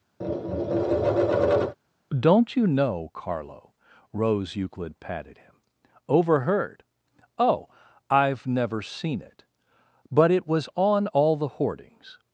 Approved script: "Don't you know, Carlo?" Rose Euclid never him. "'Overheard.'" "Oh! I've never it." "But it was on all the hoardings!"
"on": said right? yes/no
yes